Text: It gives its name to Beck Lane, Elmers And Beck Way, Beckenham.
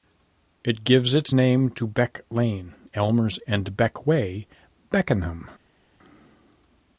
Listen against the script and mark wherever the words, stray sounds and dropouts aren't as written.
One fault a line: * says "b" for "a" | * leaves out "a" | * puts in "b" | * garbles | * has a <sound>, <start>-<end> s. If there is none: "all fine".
all fine